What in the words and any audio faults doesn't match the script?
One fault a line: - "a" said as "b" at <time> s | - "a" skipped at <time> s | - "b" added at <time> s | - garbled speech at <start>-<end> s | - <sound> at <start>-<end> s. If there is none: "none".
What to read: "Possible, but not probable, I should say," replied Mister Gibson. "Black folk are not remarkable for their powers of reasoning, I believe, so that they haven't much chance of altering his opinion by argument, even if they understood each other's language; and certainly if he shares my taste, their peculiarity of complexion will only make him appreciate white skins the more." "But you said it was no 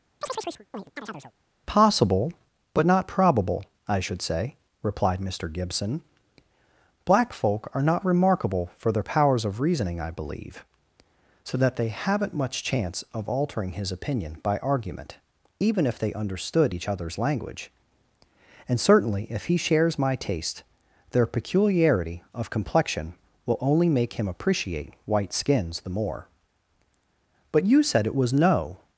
- chirp at 0.2-1.3 s